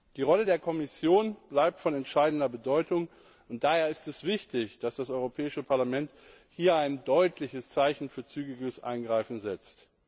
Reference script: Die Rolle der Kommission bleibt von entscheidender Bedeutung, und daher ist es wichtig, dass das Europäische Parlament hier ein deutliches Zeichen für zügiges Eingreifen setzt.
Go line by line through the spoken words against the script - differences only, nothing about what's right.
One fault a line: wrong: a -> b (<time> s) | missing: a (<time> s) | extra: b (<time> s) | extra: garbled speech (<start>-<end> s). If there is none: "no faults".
no faults